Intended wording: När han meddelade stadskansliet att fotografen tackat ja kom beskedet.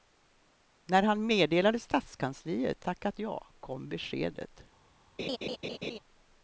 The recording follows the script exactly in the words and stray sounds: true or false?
false